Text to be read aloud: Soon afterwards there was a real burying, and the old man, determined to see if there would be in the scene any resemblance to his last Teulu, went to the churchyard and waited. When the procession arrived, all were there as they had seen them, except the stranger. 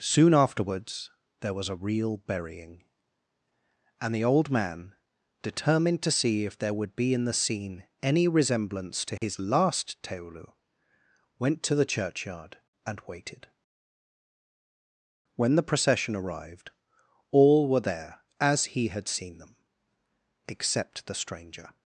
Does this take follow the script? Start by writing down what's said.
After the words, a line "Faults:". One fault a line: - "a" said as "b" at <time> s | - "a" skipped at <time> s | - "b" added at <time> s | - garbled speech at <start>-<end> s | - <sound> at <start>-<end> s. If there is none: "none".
Soon afterwards there was a real burying, and the old man, determined to see if there would be in the scene any resemblance to his last Teulu, went to the churchyard and waited. When the procession arrived, all were there as he had seen them, except the stranger.
Faults:
- dropout at 9.2-9.2 s
- "they" said as "he" at 18.8 s